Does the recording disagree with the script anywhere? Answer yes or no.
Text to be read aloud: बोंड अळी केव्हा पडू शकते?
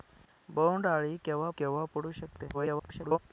yes